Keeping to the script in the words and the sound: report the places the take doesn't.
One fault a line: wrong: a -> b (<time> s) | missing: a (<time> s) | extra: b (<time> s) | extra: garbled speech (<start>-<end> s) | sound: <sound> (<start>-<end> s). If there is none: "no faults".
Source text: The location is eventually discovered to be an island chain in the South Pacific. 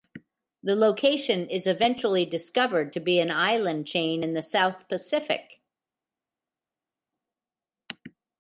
no faults